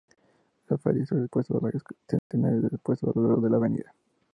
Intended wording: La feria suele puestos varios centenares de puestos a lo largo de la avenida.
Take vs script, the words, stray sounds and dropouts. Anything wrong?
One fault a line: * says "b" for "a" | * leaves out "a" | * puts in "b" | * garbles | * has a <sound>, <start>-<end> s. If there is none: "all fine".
* has a dropout, 2.2-2.3 s